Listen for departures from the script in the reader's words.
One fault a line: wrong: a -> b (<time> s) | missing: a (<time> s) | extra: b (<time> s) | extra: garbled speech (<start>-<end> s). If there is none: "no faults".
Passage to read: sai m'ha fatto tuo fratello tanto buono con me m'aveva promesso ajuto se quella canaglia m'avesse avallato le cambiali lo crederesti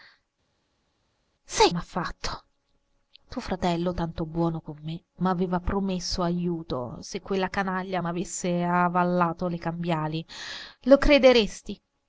no faults